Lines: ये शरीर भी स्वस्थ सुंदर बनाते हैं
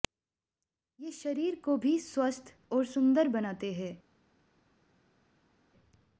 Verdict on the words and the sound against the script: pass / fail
fail